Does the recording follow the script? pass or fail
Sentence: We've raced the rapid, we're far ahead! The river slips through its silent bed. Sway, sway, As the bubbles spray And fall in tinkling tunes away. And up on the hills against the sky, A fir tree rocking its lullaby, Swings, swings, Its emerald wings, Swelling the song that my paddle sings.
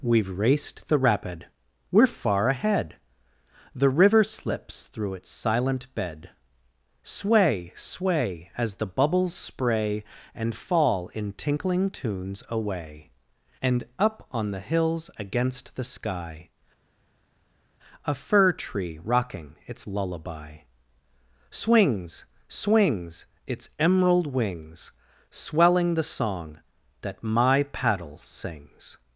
pass